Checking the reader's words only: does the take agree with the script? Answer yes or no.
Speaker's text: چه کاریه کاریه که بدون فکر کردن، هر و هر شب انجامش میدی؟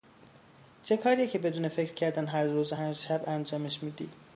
no